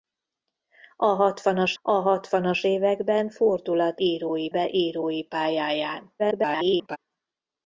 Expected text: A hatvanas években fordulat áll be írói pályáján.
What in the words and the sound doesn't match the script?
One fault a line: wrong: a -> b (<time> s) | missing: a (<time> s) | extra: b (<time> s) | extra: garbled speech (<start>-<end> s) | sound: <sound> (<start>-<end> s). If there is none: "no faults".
extra: a hatvanas (1.8 s)
wrong: áll -> írói (4.0 s)
extra: garbled speech (6.2-7.0 s)